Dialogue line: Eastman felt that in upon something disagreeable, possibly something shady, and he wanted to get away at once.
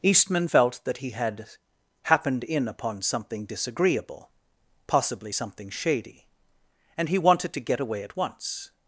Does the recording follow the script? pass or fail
fail